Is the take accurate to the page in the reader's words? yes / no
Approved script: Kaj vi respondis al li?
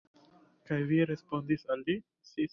yes